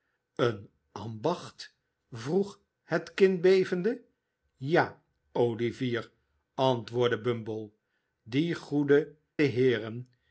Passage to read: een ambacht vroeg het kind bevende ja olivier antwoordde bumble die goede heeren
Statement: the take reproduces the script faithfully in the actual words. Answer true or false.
true